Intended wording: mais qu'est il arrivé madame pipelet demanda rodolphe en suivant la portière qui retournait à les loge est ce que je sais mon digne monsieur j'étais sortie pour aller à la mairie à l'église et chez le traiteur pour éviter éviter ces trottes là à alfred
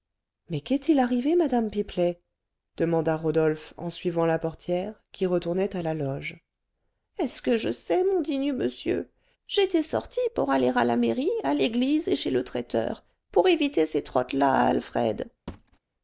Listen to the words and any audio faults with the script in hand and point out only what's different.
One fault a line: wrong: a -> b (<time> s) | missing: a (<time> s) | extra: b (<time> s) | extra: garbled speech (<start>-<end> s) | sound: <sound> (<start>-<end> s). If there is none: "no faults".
wrong: les -> la (5.8 s)
missing: éviter (13.8 s)
sound: thud (15.5-15.8 s)